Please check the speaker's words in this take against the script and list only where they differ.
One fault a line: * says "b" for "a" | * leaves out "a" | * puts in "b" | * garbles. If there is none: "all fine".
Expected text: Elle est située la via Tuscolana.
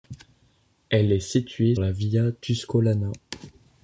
all fine